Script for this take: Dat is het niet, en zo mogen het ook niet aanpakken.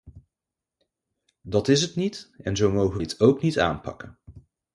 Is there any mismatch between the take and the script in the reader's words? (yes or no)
no